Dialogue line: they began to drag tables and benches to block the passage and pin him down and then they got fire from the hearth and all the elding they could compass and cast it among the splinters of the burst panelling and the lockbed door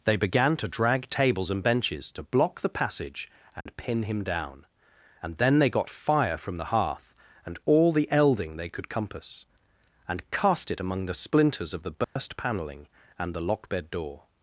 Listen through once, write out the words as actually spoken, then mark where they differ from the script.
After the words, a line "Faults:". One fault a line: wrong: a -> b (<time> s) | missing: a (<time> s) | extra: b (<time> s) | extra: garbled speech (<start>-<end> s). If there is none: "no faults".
they began to drag tables and benches to block the passage and pin him down and then they got fire from the hearth and all the elding they could compass and cast it among the splinters of the burst panelling and the lockbed door
Faults:
no faults